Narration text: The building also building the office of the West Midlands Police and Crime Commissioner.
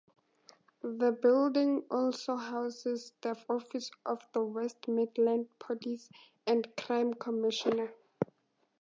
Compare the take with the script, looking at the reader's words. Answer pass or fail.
fail